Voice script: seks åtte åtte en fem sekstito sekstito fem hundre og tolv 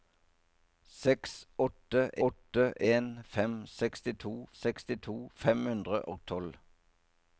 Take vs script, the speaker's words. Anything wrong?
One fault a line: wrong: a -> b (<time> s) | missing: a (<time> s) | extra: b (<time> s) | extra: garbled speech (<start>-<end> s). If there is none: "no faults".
no faults